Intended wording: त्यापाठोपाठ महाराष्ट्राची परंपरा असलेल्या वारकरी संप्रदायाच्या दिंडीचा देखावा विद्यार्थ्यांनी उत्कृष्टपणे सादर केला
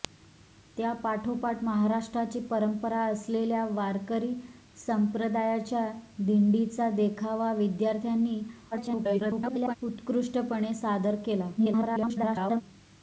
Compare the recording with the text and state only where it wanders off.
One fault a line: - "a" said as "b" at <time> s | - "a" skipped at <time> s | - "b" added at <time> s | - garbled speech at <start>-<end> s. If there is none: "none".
- garbled speech at 8.7-9.8 s
- garbled speech at 11.6-12.6 s